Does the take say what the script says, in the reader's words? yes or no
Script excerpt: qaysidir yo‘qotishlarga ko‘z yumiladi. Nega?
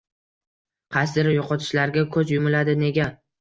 yes